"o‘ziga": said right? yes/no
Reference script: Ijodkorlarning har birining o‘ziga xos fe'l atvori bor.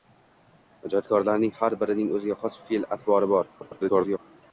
yes